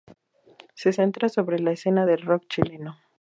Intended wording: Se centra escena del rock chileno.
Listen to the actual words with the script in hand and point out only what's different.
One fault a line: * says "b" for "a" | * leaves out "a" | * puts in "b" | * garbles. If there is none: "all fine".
* puts in "sobre la"